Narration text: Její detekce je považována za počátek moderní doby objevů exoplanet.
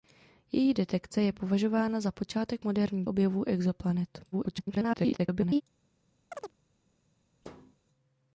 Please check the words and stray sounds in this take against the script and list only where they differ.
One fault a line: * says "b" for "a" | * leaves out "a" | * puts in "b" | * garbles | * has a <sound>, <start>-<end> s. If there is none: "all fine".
* leaves out "doby"
* garbles
* has a chirp, 6.3-6.6 s
* has a thud, 7.4-7.8 s